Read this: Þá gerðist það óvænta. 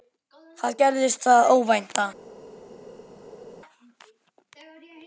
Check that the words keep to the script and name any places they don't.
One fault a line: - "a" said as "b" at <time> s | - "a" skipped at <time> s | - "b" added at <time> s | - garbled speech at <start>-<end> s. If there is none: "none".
none